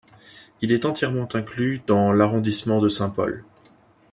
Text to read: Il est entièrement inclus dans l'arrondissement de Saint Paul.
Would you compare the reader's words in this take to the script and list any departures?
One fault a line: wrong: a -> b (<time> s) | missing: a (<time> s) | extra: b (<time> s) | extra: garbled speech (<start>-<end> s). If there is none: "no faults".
no faults